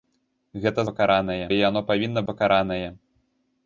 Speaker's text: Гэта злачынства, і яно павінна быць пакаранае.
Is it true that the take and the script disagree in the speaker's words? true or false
true